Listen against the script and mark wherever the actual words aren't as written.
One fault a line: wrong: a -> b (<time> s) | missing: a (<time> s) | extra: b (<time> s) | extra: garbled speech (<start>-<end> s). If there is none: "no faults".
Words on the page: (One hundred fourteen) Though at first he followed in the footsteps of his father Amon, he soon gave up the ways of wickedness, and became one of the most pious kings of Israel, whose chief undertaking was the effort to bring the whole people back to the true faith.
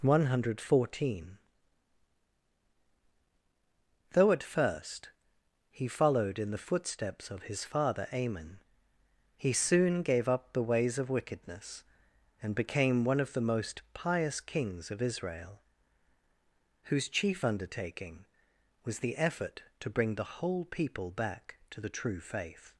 no faults